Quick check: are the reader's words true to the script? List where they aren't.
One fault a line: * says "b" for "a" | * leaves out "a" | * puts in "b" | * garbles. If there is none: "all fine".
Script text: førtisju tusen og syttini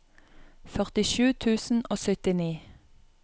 all fine